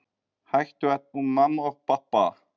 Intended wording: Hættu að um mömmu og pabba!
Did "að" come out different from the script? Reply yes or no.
no